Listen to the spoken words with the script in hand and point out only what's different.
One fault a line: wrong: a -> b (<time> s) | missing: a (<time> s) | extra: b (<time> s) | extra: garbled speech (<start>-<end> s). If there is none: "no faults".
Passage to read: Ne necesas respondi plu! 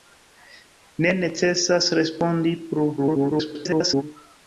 extra: garbled speech (3.0-4.0 s)